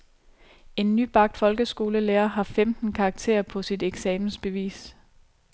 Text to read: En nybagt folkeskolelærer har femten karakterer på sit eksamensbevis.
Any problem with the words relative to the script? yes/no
no